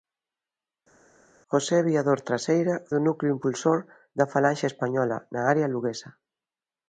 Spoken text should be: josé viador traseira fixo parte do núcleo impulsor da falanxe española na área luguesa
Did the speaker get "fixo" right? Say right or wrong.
wrong